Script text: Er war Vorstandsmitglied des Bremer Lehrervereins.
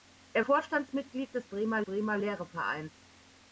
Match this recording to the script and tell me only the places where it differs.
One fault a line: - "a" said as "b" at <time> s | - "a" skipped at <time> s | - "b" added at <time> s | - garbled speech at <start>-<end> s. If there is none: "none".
- "war" skipped at 0.4 s
- "Bremer" added at 1.8 s